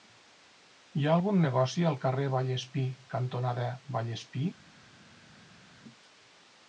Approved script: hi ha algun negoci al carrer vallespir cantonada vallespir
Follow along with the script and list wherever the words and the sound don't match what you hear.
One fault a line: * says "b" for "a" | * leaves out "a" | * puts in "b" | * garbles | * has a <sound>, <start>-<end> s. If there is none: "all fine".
all fine